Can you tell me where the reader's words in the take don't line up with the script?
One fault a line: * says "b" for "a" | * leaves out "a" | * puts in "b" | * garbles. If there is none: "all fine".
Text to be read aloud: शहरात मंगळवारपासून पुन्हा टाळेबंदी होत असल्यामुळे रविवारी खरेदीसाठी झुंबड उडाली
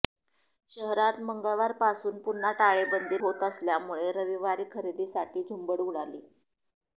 all fine